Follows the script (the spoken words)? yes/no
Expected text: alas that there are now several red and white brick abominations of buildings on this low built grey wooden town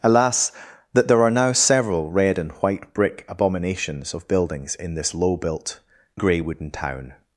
no